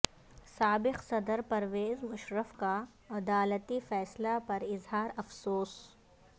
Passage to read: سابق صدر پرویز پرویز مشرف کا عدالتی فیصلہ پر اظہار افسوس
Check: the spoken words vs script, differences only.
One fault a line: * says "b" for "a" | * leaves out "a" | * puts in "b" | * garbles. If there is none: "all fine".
* leaves out "پرویز"